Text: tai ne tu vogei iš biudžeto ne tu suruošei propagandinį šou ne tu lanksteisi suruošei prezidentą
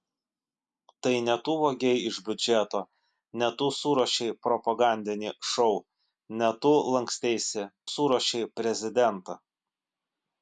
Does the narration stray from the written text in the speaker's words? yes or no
no